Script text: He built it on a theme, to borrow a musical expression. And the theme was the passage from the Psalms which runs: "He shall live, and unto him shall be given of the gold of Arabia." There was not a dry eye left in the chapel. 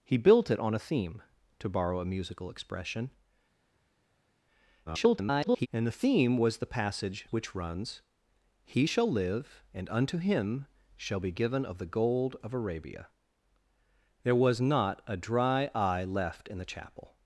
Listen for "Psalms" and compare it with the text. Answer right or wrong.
wrong